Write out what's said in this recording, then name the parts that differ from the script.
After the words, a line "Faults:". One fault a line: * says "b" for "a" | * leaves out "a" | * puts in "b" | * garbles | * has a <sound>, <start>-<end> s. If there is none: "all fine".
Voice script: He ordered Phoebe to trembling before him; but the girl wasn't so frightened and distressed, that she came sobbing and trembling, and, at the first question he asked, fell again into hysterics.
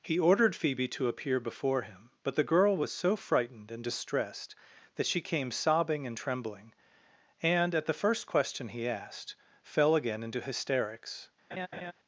He ordered Phoebe to appear before him; but the girl was so frightened and distressed, that she came sobbing and trembling, and, at the first question he asked, fell again into hysterics.
Faults:
* says "appear" for "trembling"
* says "was" for "wasn't"
* has a laugh, 11.5-11.9 s